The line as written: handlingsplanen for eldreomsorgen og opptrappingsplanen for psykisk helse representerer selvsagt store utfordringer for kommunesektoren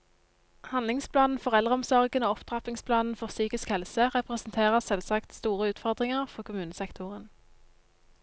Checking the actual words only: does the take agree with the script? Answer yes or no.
yes